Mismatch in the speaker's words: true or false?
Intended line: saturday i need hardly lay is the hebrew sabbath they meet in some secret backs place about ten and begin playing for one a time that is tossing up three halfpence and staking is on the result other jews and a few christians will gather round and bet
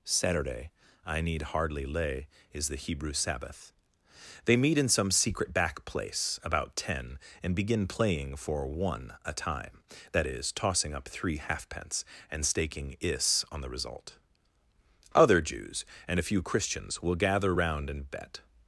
true